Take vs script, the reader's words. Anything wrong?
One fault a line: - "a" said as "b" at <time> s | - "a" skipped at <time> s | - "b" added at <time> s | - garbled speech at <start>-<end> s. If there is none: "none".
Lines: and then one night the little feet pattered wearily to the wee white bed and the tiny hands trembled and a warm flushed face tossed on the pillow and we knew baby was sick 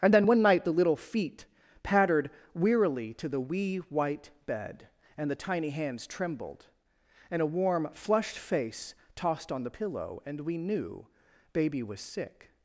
none